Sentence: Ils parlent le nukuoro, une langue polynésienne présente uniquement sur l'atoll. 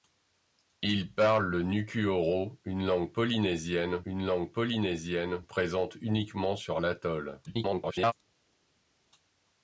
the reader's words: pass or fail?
fail